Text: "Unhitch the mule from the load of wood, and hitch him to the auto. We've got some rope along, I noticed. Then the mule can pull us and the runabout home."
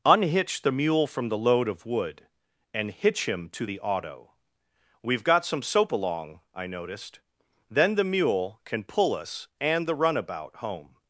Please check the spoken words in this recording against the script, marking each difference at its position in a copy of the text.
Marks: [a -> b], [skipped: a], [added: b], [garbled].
"Unhitch the mule from the load of wood, and hitch him to the auto. We've got some [rope -> soap] along, I noticed. Then the mule can pull us and the runabout home."